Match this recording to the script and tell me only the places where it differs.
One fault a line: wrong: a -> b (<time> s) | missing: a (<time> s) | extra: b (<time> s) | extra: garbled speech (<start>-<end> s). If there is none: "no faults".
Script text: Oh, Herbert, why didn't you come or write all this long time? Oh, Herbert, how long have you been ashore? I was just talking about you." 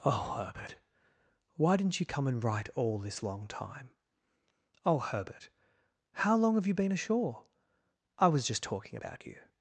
wrong: or -> and (2.2 s)